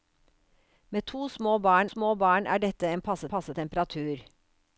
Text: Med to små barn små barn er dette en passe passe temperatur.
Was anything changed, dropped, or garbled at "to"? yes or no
no